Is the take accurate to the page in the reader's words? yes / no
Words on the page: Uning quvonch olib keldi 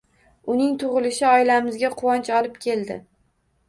no